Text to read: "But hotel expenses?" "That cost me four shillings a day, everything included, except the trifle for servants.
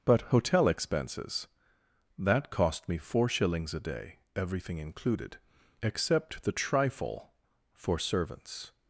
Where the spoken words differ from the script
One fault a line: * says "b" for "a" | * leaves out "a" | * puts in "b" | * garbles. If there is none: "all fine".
all fine